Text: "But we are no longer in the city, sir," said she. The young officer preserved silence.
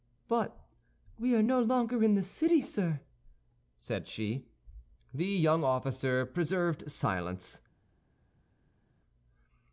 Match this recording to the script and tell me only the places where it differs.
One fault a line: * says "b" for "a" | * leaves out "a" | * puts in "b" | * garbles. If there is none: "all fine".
all fine